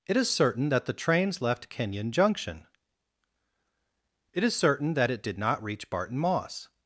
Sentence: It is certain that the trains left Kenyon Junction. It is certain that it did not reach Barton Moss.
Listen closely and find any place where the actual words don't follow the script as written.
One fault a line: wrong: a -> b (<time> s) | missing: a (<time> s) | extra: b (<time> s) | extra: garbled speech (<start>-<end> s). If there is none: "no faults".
no faults